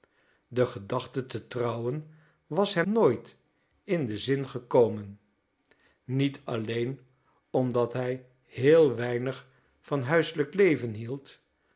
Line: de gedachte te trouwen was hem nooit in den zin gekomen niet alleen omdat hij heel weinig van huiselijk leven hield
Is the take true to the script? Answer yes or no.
yes